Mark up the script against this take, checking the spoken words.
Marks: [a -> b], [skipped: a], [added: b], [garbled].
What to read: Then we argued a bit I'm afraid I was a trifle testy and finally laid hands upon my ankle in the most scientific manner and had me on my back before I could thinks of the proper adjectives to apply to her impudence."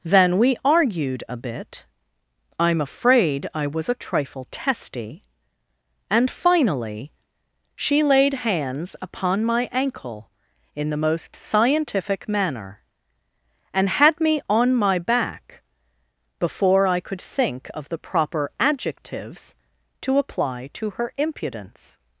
Then we argued a bit I'm afraid I was a trifle testy and finally [added: she] laid hands upon my ankle in the most scientific manner and had me on my back before I could [thinks -> think] of the proper adjectives to apply to her impudence."